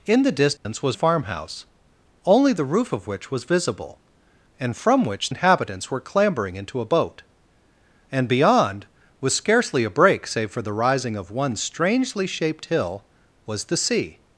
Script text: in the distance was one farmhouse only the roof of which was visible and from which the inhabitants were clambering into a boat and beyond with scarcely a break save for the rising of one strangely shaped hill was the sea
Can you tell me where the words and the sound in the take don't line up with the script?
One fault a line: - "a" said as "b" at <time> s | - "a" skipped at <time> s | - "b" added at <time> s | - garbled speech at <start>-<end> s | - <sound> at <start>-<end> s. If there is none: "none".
- dropout at 0.6-0.7 s
- "one" skipped at 1.0 s
- "the" skipped at 5.3 s